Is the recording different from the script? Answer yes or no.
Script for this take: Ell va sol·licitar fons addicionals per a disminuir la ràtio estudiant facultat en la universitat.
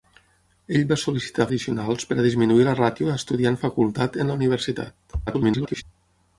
yes